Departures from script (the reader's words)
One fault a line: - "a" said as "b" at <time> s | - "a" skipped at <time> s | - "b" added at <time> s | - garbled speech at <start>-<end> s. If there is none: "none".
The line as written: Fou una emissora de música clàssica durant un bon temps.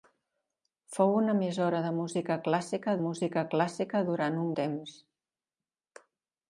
- "música clàssica" added at 3.1 s
- "bon" skipped at 4.5 s